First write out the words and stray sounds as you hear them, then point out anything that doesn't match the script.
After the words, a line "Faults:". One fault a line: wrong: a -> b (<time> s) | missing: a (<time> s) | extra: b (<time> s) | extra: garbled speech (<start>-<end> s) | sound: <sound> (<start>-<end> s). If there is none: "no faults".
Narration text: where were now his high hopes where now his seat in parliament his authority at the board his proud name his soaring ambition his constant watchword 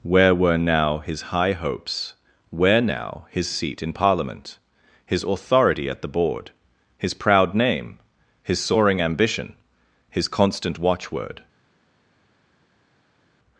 where were now his high hopes where now his seat in parliament his authority at the board his proud name his soaring ambition his constant watchword
Faults:
no faults